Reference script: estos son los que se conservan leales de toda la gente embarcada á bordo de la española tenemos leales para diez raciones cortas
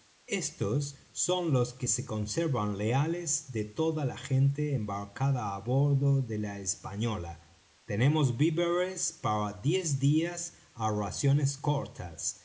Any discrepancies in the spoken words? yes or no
yes